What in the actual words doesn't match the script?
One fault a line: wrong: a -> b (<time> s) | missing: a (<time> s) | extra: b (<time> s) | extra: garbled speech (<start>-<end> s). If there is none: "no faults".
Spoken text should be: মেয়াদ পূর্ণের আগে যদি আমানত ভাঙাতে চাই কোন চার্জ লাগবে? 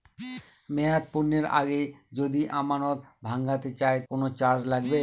no faults